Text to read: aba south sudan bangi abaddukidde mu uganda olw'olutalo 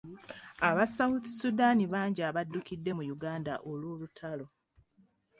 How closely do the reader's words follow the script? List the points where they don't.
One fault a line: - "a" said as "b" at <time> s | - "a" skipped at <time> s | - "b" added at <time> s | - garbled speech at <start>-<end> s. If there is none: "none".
none